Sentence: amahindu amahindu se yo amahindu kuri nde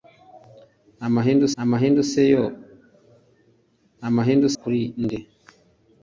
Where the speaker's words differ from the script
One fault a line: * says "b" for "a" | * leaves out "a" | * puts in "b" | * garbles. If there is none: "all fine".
all fine